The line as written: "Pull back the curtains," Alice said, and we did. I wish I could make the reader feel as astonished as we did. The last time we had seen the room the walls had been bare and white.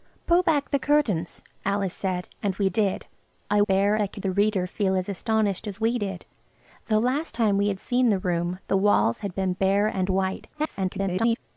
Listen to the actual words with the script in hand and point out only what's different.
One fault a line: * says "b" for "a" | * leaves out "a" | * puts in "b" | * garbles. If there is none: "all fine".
* says "bare" for "wish"
* leaves out "make"
* garbles